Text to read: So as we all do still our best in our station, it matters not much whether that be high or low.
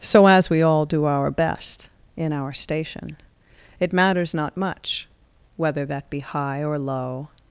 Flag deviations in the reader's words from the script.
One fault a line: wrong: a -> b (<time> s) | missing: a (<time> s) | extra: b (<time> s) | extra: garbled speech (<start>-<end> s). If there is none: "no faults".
missing: still (1.1 s)